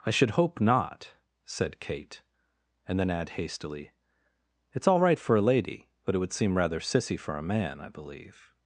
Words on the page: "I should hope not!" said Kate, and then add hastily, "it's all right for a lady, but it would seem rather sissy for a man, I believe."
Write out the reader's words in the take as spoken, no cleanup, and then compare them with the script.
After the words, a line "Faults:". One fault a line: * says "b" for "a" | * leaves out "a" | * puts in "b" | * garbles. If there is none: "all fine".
"I should hope not!" said Kate, and then add hastily, "it's all right for a lady, but it would seem rather sissy for a man, I believe."
Faults:
all fine